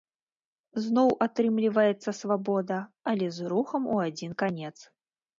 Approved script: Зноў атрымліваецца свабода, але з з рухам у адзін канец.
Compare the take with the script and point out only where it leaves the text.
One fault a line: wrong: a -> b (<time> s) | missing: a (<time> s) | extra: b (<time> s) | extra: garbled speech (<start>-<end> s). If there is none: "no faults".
missing: з (3.5 s)